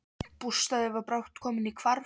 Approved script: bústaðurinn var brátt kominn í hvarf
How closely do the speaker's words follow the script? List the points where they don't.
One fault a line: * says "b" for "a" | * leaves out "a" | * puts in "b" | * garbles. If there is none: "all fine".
all fine